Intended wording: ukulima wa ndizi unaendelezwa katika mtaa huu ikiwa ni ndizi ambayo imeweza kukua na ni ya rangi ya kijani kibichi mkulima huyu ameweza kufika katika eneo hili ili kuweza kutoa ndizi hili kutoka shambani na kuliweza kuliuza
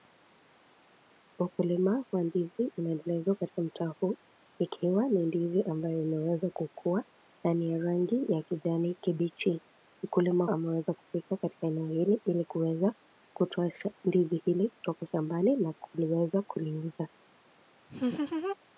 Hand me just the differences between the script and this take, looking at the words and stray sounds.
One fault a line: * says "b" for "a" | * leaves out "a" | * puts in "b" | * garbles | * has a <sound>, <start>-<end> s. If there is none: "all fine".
* leaves out "huyu"
* has a laugh, 17.9-18.6 s